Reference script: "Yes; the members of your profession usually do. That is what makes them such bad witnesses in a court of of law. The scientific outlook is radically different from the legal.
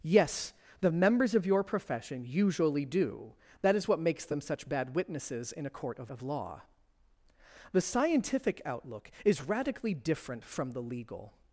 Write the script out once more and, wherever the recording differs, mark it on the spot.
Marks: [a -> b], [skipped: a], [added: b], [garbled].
"Yes; the members of your profession usually do. That is what makes them such bad witnesses in a court of of law. The scientific outlook is radically different from the legal.